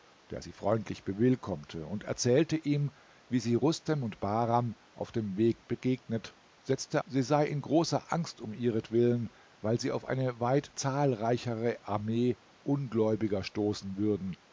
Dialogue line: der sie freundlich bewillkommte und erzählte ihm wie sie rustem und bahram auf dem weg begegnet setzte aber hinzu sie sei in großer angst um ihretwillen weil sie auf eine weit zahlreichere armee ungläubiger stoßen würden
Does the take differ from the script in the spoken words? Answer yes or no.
yes